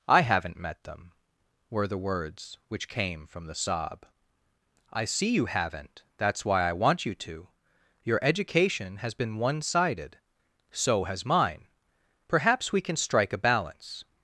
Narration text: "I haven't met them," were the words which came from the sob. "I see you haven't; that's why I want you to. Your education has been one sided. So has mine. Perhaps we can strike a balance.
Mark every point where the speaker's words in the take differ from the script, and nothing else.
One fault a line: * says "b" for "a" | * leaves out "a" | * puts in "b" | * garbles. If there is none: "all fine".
all fine